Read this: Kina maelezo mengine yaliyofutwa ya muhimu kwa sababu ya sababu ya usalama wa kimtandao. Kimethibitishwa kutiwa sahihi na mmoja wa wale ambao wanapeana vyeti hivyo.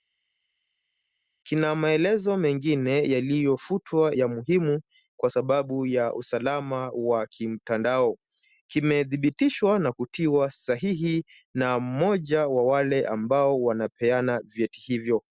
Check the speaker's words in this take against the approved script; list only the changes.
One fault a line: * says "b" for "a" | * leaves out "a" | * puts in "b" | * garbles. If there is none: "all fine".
* leaves out "sababu ya"
* puts in "na"